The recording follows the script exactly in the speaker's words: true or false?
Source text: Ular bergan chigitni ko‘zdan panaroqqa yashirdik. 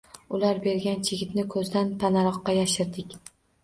true